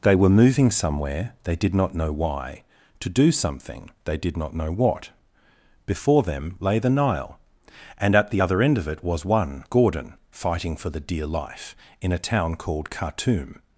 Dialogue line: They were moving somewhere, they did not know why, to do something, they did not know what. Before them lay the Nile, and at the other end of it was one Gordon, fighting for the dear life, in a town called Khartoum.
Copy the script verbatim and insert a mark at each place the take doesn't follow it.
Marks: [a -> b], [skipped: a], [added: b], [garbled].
They were moving somewhere, they did not know why, to do something, they did not know what. Before them lay the Nile, and at the other end of it was one Gordon, fighting for the dear life, in a town called Khartoum.